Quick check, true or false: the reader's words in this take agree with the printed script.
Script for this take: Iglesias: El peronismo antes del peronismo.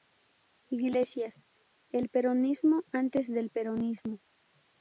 true